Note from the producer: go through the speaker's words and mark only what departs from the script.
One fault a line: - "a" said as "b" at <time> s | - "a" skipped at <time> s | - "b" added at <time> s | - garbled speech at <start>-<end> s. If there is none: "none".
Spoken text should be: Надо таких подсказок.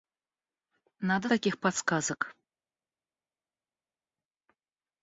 none